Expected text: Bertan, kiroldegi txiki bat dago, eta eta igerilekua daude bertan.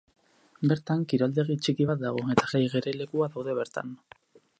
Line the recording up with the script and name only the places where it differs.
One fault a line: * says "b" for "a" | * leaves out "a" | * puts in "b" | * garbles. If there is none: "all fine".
all fine